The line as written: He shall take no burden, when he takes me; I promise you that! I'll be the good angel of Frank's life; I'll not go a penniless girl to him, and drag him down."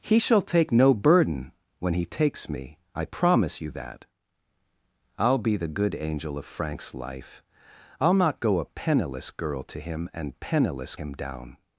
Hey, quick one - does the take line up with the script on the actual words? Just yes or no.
no